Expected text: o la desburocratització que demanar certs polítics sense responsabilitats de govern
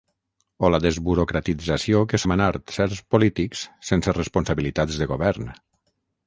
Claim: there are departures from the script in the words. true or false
false